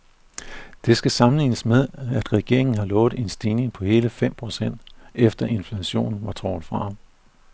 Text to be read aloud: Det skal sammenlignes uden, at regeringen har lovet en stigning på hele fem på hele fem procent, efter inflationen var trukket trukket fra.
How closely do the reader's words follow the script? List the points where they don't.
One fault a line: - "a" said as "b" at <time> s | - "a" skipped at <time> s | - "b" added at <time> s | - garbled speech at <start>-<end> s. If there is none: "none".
- "uden" said as "med" at 1.6 s
- "på hele fem" skipped at 4.3 s
- "trukket" skipped at 6.7 s